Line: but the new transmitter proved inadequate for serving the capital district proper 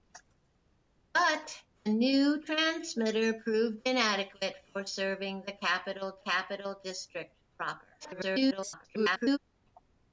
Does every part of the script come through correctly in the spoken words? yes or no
no